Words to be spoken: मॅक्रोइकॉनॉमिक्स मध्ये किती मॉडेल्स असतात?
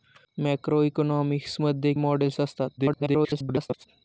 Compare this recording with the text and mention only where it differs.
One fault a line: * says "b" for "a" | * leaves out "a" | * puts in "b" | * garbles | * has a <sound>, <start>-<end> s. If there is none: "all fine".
* leaves out "किती"
* garbles